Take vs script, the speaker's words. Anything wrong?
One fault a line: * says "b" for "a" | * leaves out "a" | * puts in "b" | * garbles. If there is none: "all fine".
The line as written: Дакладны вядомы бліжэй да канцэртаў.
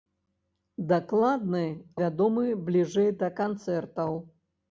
all fine